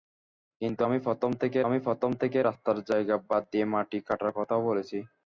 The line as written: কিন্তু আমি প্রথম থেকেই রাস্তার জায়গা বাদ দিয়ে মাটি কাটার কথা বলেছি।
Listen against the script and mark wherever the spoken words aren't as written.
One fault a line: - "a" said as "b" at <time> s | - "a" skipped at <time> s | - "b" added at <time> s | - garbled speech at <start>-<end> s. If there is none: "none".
- "আমি প্রথম থেকেই" added at 1.6 s